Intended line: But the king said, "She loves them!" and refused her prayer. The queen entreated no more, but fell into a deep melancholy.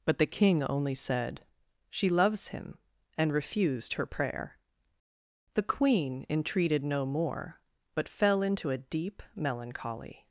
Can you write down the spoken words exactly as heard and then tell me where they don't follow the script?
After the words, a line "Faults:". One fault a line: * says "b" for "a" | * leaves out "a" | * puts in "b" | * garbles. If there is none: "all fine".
But the king only said, "She loves him!" and refused her prayer. The queen entreated no more, but fell into a deep melancholy.
Faults:
* puts in "only"
* says "him" for "them"